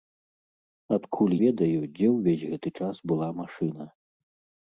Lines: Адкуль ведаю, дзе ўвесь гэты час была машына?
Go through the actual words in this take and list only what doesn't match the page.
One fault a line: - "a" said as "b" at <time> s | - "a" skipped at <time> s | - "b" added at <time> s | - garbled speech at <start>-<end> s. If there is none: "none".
none